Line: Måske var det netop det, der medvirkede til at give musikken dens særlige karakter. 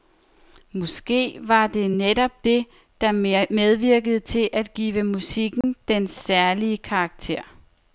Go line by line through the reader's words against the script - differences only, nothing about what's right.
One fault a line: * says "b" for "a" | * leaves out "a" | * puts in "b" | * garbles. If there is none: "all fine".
all fine